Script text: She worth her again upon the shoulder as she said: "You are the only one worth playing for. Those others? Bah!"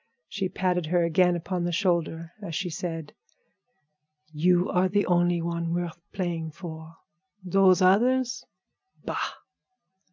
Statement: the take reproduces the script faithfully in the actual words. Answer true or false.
false